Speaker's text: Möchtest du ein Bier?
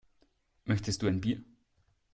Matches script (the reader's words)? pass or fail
pass